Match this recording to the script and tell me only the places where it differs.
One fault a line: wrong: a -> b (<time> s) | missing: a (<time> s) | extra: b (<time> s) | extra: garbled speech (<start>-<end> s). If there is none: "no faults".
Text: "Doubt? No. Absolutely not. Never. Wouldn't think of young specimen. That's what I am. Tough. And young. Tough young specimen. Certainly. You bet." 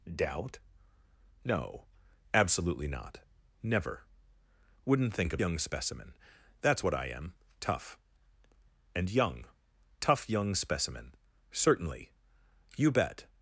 no faults